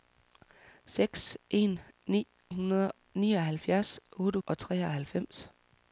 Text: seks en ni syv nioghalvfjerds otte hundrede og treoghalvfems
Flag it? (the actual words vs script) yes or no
yes